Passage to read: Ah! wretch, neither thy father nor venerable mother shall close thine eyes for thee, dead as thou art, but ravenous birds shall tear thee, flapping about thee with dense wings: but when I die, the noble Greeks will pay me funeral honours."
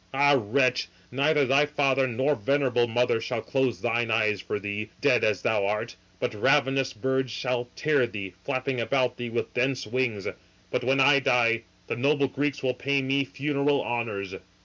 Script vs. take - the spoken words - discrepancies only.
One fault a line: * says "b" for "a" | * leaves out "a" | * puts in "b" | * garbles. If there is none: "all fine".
all fine